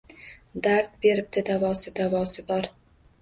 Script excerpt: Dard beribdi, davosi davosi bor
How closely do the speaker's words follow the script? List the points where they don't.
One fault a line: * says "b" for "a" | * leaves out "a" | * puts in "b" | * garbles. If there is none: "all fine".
all fine